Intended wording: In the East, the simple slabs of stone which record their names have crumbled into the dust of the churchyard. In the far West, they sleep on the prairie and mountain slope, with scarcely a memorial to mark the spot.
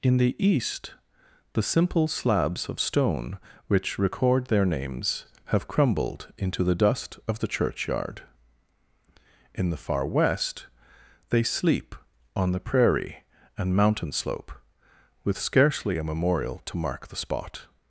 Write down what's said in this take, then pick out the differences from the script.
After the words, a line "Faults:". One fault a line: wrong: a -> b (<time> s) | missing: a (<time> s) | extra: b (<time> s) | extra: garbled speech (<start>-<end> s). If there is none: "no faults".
In the East, the simple slabs of stone which record their names have crumbled into the dust of the churchyard. In the far West, they sleep on the prairie and mountain slope, with scarcely a memorial to mark the spot.
Faults:
no faults